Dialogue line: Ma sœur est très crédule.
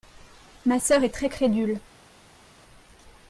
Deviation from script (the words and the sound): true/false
false